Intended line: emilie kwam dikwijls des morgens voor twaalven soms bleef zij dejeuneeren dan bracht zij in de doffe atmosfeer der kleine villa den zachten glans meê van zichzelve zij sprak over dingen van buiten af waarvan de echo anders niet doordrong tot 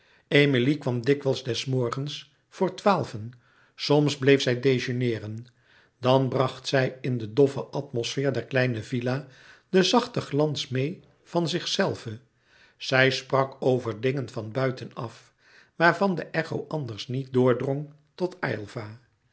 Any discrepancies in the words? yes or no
no